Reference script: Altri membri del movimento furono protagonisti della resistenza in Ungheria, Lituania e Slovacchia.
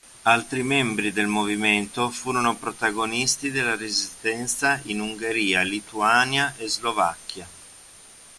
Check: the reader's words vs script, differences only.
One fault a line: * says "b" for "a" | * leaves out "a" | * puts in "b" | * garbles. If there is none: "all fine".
all fine